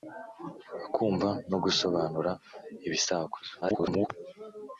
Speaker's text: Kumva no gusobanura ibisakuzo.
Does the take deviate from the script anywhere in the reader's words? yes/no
yes